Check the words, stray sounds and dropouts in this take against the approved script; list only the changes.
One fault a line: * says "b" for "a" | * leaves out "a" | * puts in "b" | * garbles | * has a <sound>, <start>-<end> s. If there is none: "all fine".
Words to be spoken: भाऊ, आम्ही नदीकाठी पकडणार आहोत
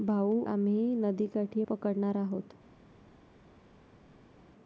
all fine